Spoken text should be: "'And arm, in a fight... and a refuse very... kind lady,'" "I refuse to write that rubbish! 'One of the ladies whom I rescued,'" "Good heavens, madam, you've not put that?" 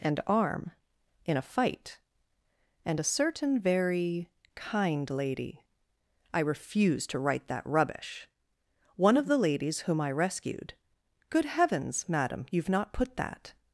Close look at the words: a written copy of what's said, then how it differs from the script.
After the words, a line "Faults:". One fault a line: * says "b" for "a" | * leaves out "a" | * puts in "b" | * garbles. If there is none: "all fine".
"'And arm, in a fight... and a certain very... kind lady,'" "I refuse to write that rubbish! 'One of the ladies whom I rescued,'" "Good heavens, madam, you've not put that?"
Faults:
* says "certain" for "refuse"